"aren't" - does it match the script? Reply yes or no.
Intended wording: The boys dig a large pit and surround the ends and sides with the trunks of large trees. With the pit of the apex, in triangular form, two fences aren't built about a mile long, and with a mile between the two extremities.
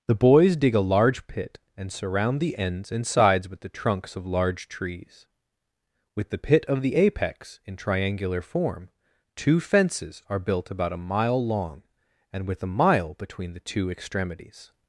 no